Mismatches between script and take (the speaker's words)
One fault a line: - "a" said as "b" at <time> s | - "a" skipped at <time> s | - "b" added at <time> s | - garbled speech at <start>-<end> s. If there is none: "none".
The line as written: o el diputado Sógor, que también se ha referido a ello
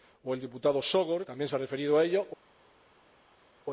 - "que" skipped at 1.3 s